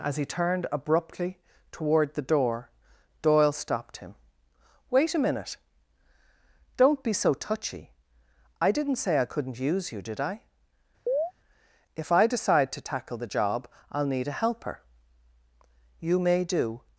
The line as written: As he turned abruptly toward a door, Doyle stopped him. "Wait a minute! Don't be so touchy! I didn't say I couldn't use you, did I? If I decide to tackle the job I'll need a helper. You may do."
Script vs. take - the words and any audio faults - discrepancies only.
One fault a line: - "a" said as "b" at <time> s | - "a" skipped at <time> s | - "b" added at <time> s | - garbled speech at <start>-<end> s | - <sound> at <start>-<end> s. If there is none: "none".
- "a" said as "the" at 2.1 s
- chirp at 11.1-11.3 s